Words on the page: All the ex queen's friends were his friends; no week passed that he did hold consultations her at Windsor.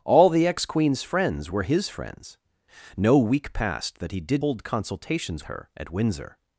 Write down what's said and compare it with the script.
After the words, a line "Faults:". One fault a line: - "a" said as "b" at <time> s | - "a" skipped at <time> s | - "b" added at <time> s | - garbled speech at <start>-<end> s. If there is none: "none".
All the ex queen's friends were his friends; no week passed that he did hold consultations her at Windsor.
Faults:
none